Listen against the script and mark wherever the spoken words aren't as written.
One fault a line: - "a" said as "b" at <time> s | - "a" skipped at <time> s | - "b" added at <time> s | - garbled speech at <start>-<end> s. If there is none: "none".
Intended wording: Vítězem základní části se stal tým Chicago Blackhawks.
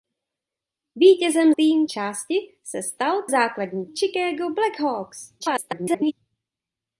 - "základní" said as "tým" at 1.6 s
- "tým" said as "základní" at 3.3 s
- garbled speech at 5.4-6.1 s